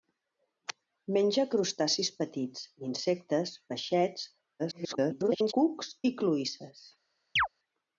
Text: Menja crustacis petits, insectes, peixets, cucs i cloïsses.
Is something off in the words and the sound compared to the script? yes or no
yes